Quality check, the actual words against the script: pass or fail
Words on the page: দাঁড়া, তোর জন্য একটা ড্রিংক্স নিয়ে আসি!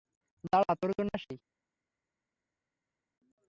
fail